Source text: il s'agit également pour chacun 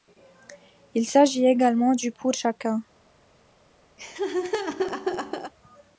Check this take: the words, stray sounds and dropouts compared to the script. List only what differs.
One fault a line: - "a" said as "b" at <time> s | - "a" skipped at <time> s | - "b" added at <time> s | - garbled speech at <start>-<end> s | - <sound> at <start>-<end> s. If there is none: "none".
- "du" added at 1.9 s
- laugh at 4.0-5.5 s